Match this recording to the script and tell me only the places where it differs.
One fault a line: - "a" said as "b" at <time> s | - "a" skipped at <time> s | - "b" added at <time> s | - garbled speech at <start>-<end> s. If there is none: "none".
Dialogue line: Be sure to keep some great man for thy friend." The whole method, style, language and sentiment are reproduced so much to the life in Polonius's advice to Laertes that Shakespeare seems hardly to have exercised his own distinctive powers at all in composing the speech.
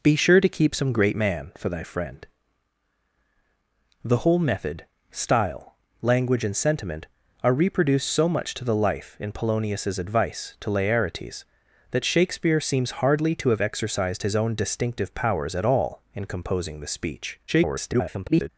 - garbled speech at 17.5-18.5 s